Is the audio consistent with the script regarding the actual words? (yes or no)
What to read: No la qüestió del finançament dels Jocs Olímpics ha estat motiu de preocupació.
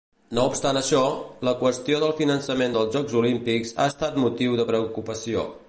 no